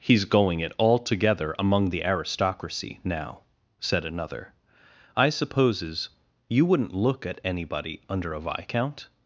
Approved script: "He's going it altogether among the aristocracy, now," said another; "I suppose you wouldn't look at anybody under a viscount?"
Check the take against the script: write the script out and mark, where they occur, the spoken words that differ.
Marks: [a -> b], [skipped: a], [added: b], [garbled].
"He's going it altogether among the aristocracy, now," said another; "I [suppose -> supposes] you wouldn't look at anybody under a viscount?"